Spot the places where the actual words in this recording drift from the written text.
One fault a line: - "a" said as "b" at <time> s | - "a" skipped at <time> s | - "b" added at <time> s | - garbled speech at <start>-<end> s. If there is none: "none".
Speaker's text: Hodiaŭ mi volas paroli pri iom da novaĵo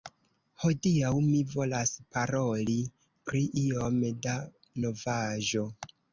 none